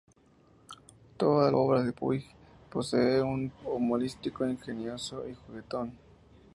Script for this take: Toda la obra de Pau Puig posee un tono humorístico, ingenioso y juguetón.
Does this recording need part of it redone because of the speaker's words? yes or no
yes